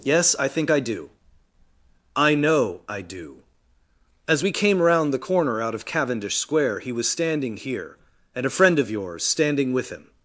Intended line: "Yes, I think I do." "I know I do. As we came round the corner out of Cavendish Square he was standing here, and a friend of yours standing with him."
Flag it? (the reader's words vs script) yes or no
no